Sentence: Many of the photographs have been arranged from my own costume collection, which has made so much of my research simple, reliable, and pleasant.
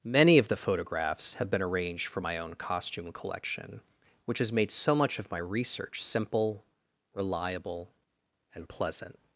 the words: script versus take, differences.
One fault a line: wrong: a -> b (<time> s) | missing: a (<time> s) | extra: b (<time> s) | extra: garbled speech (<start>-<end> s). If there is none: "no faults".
wrong: from -> for (2.1 s)